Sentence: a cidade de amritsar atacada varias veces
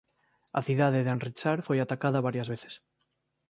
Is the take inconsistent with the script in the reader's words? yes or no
yes